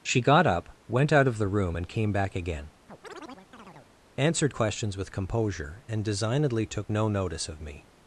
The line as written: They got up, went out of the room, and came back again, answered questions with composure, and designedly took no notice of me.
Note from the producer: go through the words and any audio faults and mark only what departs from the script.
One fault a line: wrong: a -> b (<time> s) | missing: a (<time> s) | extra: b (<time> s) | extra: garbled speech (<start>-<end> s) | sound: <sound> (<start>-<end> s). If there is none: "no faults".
wrong: They -> She (0.0 s)
sound: chirp (2.9-3.9 s)